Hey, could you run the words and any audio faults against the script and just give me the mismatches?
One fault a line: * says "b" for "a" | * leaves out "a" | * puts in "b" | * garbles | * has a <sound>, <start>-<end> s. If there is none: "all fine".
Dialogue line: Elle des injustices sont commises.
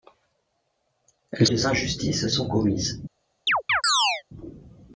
* has a chirp, 3.5-4.2 s